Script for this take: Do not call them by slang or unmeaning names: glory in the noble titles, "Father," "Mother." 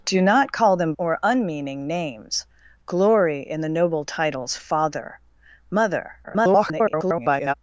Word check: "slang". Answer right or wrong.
wrong